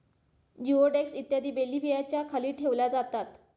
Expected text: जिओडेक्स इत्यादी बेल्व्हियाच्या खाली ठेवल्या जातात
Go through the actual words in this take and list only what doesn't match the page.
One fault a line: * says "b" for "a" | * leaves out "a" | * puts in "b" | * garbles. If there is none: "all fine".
all fine